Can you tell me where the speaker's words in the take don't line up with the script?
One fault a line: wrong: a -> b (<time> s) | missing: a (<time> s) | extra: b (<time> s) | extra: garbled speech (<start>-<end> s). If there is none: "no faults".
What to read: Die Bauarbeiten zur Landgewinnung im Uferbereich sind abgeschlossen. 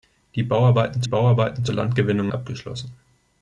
extra: Bauarbeiten (1.0 s)
missing: im Uferbereich sind (2.3 s)